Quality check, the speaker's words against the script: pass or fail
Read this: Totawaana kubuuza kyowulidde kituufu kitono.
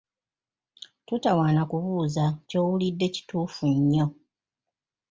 fail